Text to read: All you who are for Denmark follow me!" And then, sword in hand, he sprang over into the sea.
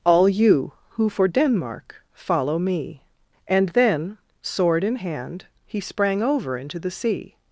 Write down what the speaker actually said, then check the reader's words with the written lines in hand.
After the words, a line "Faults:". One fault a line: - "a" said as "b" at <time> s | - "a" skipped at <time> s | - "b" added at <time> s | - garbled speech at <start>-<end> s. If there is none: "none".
All you who for Denmark follow me!" And then, sword in hand, he sprang over into the sea.
Faults:
- "are" skipped at 1.1 s